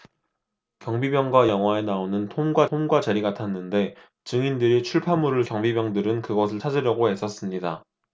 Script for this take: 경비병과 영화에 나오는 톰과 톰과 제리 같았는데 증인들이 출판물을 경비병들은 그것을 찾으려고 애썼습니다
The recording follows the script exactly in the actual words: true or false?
true